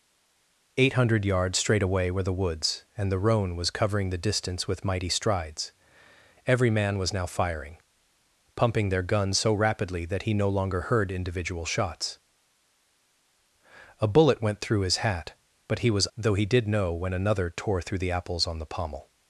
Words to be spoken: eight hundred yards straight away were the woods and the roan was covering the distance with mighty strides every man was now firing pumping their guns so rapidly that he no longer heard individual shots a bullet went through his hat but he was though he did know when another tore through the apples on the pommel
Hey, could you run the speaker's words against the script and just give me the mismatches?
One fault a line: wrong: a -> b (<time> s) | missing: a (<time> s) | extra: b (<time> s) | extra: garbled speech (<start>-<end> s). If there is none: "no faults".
no faults